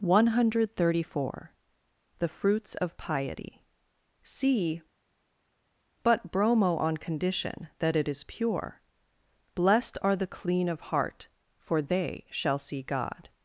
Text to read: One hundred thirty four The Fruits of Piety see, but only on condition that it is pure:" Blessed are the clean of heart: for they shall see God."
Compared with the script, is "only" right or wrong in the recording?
wrong